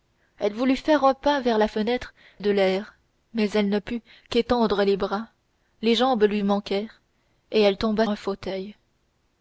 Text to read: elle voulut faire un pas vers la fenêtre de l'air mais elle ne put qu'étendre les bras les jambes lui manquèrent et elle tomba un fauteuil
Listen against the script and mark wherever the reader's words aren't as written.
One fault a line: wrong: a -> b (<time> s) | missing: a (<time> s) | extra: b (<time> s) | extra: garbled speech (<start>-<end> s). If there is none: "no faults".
no faults